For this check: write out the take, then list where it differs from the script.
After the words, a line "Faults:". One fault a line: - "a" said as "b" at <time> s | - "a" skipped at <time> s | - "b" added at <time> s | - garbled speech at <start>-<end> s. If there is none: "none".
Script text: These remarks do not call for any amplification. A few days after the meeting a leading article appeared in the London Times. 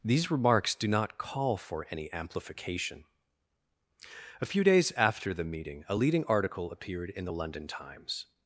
These remarks do not call for any amplification. A few days after the meeting a leading article appeared in the London Times.
Faults:
none